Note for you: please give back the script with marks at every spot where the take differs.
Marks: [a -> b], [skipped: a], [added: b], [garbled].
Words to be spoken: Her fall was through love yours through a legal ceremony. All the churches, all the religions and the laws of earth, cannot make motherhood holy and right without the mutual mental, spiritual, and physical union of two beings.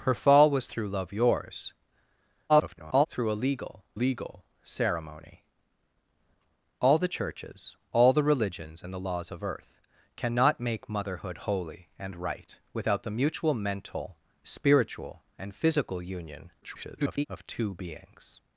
Her fall was through love yours [garbled] through a legal [added: legal] ceremony. All the churches, all the religions and the laws of earth, cannot make motherhood holy and right without the mutual mental, spiritual, and physical union [garbled] of two beings.